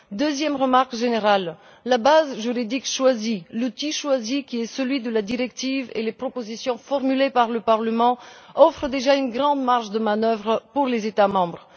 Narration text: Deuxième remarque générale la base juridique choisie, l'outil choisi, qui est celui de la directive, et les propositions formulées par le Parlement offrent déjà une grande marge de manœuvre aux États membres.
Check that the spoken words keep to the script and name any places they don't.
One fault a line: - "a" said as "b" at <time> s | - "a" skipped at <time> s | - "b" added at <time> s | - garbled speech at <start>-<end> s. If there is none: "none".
none